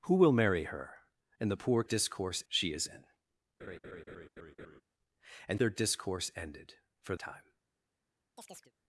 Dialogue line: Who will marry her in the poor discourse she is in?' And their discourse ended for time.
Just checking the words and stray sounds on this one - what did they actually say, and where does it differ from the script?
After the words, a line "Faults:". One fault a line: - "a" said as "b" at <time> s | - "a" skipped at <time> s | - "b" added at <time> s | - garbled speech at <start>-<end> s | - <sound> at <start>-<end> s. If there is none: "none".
Who will marry her in the poor discourse she is in?' And their discourse ended for time.
Faults:
- laugh at 3.6-4.8 s
- chirp at 8.4-8.7 s